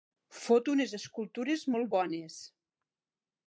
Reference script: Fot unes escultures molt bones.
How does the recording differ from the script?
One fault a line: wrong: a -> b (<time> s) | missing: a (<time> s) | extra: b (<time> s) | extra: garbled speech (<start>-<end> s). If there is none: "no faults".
no faults